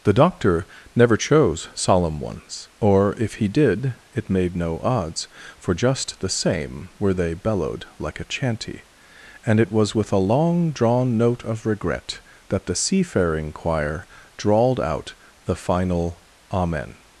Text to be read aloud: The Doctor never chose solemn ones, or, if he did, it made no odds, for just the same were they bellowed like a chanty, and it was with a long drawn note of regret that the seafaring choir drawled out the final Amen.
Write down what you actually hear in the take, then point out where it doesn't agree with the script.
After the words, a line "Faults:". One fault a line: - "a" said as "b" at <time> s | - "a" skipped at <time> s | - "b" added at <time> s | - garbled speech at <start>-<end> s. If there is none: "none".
The Doctor never chose solemn ones, or, if he did, it made no odds, for just the same were they bellowed like a chanty, and it was with a long drawn note of regret that the seafaring choir drawled out the final Amen.
Faults:
none